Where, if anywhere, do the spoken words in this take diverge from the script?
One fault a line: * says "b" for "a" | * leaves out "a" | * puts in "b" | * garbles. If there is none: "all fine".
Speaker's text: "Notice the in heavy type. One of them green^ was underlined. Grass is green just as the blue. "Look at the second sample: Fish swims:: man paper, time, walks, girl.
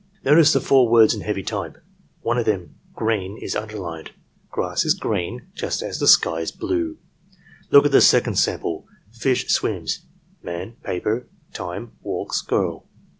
* puts in "four words"
* says "is" for "was"
* puts in "sky is"